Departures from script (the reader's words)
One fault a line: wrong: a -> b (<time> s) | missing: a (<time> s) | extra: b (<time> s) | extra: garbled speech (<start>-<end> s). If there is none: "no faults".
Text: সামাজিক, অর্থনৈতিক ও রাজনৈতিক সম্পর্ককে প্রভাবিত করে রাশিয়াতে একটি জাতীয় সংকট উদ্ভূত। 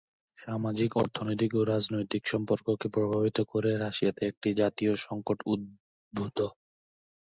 no faults